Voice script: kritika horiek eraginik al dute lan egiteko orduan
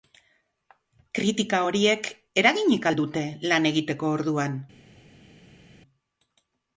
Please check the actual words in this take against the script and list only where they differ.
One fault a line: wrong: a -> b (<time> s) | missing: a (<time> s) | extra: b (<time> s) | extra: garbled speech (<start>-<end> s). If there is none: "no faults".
no faults